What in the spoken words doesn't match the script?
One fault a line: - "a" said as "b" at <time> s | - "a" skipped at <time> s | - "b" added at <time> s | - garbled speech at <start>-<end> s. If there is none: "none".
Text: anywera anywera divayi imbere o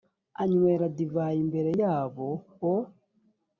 - "anywera" skipped at 0.8 s
- "yabo" added at 1.8 s